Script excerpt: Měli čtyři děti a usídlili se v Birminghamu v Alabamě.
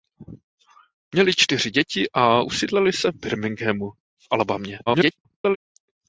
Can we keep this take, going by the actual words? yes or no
no